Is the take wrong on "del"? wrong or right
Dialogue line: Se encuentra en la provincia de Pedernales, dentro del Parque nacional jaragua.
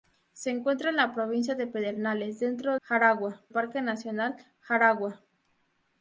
wrong